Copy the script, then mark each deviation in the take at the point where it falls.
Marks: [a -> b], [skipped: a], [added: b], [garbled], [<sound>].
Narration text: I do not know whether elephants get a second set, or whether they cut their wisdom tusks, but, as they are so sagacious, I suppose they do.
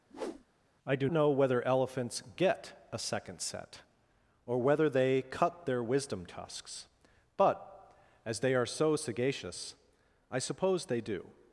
[whoosh] I do [skipped: not] know whether elephants get a second set, or whether they cut their wisdom tusks, but, as they are so sagacious, I suppose they do.